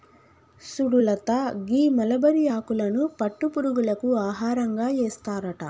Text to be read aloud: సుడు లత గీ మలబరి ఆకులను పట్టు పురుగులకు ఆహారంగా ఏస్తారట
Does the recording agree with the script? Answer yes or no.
yes